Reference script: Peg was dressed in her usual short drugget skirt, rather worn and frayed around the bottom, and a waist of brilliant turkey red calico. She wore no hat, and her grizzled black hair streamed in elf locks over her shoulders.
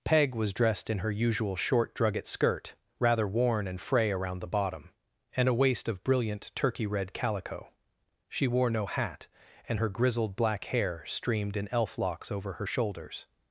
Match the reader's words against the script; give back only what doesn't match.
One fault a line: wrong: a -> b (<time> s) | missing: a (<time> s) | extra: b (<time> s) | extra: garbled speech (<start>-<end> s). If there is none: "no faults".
wrong: frayed -> fray (3.8 s)